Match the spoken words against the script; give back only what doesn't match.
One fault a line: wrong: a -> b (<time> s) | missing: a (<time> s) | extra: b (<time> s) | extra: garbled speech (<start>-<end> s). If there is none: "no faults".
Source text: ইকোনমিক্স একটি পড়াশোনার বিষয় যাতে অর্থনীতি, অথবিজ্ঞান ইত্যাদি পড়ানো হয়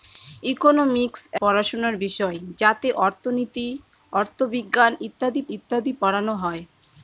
missing: একটি (1.2 s)
extra: ইত্যাদি (5.5 s)